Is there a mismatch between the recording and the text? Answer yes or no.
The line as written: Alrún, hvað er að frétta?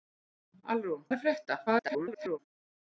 yes